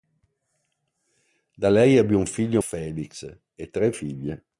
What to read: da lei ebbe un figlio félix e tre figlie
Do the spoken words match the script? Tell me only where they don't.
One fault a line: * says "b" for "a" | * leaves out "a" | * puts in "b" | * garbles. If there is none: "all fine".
all fine